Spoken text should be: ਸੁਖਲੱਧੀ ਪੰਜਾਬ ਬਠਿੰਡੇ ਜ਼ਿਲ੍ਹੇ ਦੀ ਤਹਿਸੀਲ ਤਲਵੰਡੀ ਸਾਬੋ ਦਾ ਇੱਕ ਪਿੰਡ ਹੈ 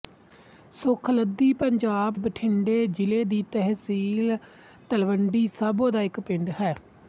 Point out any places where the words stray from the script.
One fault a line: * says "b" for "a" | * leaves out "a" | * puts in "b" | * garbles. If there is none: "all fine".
all fine